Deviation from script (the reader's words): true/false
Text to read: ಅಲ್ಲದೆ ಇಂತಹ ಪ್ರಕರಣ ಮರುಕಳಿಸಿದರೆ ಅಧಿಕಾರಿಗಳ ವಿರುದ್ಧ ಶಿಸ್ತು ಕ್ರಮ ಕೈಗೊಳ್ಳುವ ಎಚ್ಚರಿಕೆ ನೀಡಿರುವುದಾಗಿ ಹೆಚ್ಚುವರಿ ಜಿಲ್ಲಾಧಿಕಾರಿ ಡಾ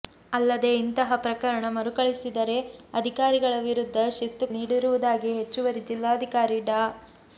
true